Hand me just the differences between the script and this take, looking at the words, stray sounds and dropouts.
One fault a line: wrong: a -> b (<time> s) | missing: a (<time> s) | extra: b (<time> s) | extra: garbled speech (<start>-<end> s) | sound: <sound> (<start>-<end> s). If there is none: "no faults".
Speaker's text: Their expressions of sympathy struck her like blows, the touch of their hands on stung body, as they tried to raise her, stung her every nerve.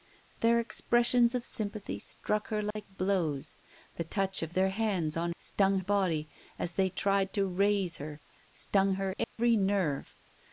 sound: dropout (2.7-2.8 s)
sound: dropout (9.2-9.4 s)